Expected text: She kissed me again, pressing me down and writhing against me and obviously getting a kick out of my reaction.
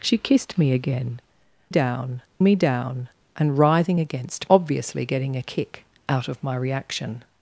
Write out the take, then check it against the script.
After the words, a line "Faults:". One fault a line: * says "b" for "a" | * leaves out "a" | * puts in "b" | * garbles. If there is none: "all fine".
She kissed me again, down me down and writhing against obviously getting a kick out of my reaction.
Faults:
* says "down" for "pressing"
* leaves out "me and"